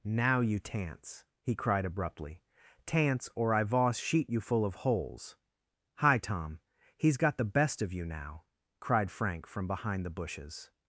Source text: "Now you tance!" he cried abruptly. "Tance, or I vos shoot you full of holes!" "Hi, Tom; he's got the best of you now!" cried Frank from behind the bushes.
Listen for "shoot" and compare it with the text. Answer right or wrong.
wrong